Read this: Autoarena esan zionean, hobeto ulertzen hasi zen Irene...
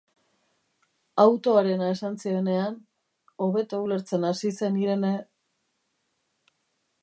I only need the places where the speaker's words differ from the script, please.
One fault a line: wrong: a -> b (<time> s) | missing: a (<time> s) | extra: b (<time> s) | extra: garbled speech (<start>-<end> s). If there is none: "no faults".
no faults